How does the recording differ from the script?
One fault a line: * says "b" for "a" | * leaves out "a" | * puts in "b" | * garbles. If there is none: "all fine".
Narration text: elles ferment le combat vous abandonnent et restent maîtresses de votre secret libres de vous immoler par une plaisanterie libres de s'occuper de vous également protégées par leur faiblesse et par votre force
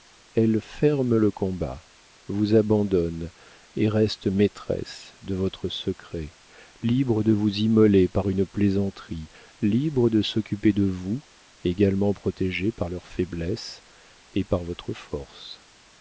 all fine